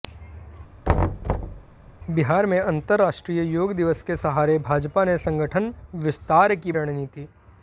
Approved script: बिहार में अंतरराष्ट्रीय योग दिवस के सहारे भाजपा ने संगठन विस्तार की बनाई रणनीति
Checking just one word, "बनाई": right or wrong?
wrong